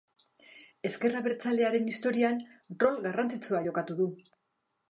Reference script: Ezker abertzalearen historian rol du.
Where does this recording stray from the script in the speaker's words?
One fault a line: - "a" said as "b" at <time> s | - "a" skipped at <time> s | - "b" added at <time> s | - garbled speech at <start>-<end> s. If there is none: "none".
- "garrantzitsua jokatu" added at 3.1 s